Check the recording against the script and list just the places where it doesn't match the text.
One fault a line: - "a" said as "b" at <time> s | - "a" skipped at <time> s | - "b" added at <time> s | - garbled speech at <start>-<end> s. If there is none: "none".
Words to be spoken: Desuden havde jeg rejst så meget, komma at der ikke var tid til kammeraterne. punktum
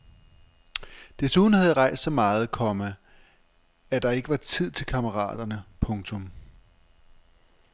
none